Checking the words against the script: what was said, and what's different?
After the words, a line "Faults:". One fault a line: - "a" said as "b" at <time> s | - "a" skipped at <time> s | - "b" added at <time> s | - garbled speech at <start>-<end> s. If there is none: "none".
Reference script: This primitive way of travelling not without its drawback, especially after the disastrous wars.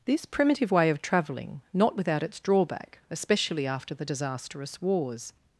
This primitive way of travelling not without its drawback, especially after the disastrous wars.
Faults:
none